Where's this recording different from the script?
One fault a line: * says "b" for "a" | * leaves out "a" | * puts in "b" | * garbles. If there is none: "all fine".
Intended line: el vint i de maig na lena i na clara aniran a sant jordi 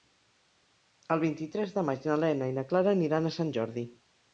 * puts in "tres"